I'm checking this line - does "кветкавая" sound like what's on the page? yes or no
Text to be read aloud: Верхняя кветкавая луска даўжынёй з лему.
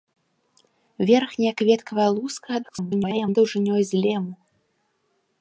yes